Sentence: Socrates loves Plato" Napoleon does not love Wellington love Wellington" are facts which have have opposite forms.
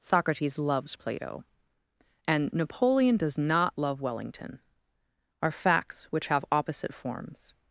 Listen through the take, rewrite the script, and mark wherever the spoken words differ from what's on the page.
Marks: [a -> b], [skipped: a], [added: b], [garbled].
Socrates loves Plato" [added: and] Napoleon does not love Wellington [skipped: love Wellington"] are facts which have [skipped: have] opposite forms.